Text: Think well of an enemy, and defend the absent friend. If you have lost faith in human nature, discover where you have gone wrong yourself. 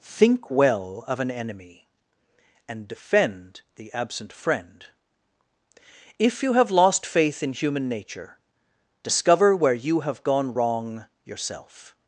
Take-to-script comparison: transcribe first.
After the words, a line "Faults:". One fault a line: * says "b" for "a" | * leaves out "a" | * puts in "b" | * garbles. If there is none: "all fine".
Think well of an enemy, and defend the absent friend. If you have lost faith in human nature, discover where you have gone wrong yourself.
Faults:
all fine